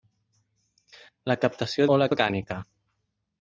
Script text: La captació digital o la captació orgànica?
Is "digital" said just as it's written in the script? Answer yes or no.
no